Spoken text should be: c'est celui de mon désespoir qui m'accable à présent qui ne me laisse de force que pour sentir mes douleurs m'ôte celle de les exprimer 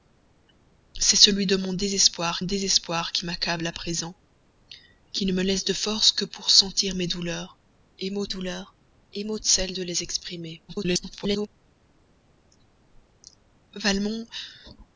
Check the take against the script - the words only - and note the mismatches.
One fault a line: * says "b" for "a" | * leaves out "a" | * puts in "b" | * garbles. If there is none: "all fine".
* puts in "désespoir"
* puts in "douleurs m'ôte"
* garbles